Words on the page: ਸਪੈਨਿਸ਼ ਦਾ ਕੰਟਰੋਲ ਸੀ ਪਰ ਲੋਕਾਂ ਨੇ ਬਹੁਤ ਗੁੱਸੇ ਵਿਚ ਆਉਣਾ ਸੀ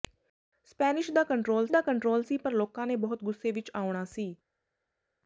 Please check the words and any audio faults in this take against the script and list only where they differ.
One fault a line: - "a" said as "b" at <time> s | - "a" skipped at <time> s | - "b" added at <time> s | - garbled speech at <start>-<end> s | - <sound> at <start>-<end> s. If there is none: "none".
- "ਦਾ ਕੰਟਰੋਲ" added at 1.7 s